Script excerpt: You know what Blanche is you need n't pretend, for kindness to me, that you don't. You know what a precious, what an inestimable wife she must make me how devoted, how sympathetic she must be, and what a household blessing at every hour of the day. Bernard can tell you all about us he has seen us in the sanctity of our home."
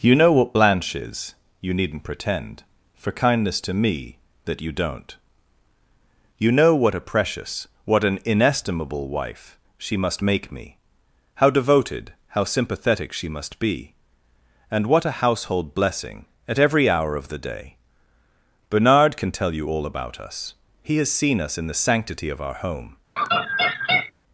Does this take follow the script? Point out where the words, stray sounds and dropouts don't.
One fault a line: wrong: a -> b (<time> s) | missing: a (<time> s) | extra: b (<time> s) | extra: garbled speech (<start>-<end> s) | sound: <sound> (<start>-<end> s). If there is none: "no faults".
sound: laugh (23.2-24.1 s)